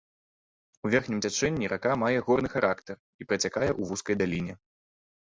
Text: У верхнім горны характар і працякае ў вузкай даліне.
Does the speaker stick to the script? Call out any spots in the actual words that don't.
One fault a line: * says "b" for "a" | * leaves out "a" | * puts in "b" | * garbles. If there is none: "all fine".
* puts in "цячэнні рака мае"